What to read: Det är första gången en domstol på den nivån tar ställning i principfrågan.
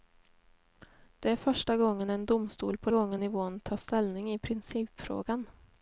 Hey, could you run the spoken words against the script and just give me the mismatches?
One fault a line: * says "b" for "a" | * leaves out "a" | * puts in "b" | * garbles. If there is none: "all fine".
* says "gången" for "den"